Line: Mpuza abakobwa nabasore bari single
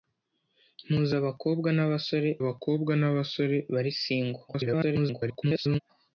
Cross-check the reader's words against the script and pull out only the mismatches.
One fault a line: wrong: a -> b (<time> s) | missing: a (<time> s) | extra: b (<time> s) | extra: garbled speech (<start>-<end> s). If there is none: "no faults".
extra: abakobwa nabasore (2.4 s)
extra: garbled speech (4.5-5.8 s)